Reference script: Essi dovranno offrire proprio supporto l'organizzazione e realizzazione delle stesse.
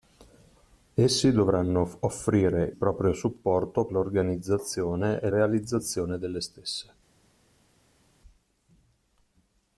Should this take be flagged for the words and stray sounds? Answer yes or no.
no